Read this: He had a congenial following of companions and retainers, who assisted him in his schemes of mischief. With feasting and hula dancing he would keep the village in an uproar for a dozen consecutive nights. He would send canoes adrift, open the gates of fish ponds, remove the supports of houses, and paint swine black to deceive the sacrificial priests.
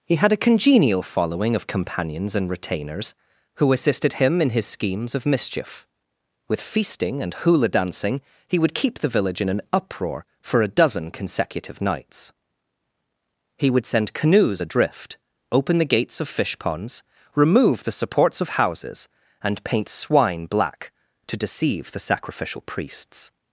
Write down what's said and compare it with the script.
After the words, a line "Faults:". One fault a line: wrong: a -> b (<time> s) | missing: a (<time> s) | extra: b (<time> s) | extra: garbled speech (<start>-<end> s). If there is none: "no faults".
He had a congenial following of companions and retainers, who assisted him in his schemes of mischief. With feasting and hula dancing he would keep the village in an uproar for a dozen consecutive nights. He would send canoes adrift, open the gates of fish ponds, remove the supports of houses, and paint swine black to deceive the sacrificial priests.
Faults:
no faults